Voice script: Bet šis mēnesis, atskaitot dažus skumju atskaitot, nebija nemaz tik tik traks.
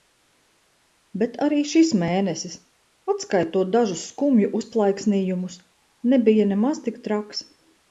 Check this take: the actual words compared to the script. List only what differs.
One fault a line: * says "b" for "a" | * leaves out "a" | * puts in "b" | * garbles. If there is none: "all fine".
* puts in "arī"
* says "uzplaiksnījumus" for "atskaitot"
* leaves out "tik"